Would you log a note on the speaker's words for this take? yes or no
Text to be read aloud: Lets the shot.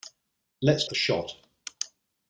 no